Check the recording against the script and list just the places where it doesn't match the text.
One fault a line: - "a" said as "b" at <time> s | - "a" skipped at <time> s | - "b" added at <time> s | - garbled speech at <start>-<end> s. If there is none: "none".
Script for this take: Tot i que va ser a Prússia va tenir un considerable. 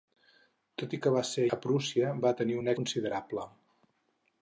none